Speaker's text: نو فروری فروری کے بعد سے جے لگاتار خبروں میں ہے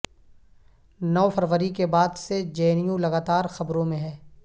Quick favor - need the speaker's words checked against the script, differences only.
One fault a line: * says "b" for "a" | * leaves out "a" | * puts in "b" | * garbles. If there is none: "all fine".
* leaves out "فروری"
* puts in "این یو"